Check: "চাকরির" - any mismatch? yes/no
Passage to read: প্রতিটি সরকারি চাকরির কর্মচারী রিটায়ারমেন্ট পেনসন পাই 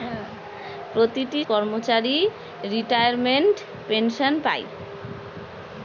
yes